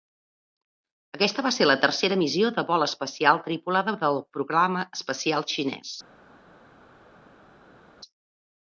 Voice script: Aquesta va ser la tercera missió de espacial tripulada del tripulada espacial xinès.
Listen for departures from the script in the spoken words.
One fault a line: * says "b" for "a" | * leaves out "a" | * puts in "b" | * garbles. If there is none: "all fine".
* puts in "vol"
* says "programa" for "tripulada"